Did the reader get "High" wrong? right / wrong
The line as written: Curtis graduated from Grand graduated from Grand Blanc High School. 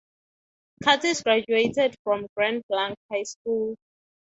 right